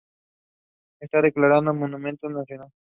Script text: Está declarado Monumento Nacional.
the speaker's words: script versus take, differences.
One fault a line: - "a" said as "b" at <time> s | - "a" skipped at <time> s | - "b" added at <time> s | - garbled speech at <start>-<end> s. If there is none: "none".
none